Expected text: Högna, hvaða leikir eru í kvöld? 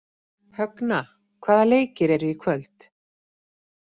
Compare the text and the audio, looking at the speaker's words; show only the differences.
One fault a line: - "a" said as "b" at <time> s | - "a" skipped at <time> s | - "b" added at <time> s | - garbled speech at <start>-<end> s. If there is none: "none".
none